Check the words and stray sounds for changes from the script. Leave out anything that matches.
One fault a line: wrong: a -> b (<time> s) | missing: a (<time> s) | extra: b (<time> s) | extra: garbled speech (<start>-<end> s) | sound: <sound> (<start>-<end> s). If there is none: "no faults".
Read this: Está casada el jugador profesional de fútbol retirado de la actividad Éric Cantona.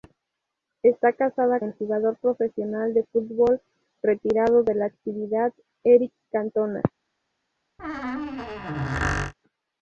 sound: squeak (7.8-9.3 s)